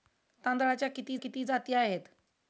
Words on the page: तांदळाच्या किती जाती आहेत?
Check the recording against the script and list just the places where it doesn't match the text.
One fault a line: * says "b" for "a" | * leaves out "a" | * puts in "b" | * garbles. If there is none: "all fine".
* puts in "किती"